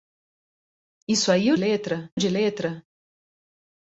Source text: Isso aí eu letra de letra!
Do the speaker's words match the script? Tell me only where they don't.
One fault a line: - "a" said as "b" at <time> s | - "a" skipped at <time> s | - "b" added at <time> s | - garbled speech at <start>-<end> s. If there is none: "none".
none